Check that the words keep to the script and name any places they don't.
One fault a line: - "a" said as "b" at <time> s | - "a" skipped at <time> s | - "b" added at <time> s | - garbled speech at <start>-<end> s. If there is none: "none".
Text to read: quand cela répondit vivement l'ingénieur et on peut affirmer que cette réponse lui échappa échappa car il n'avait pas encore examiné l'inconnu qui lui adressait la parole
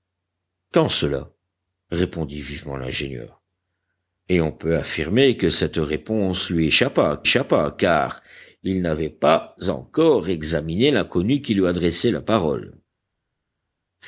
none